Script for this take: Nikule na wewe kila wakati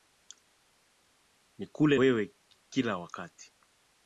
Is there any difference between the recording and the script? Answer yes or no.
yes